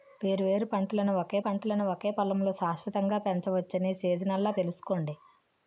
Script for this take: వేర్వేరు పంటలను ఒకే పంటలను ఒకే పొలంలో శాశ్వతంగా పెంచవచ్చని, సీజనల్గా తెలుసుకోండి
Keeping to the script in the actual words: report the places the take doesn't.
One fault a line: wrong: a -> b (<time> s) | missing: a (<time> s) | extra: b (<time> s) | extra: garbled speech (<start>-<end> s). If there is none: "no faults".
no faults